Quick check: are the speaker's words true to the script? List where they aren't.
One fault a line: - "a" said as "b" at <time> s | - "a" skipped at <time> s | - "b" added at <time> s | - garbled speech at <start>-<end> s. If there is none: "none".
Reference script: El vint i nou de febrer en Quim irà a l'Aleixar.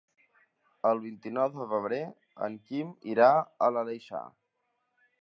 none